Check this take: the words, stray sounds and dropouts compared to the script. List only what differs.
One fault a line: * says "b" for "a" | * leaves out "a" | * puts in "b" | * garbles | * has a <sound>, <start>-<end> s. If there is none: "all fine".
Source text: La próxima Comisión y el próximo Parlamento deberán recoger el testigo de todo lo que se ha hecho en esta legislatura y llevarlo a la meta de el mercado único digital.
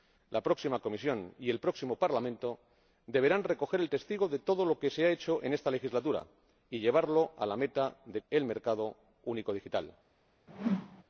* has a whoosh, 10.5-11.0 s